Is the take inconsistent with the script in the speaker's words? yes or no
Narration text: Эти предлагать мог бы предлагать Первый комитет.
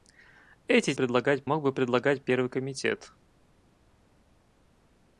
no